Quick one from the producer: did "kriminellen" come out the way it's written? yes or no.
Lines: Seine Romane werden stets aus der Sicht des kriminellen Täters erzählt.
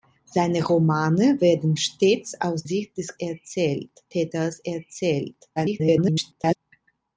no